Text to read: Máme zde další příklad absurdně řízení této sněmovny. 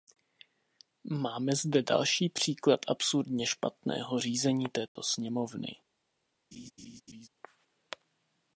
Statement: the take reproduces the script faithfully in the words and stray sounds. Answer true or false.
false